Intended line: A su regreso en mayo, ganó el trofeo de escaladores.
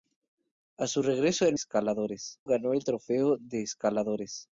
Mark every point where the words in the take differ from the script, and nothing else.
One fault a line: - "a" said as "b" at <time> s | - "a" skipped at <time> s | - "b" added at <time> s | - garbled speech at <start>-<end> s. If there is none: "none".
- "mayo" said as "escaladores" at 1.5 s